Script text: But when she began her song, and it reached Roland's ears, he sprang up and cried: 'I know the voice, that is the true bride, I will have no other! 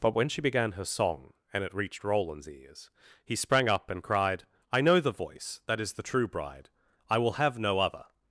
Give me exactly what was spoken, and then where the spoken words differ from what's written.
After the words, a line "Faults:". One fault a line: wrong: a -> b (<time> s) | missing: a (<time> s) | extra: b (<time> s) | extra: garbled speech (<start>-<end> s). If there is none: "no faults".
But when she began her song, and it reached Roland's ears, he sprang up and cried: 'I know the voice, that is the true bride, I will have no other!
Faults:
no faults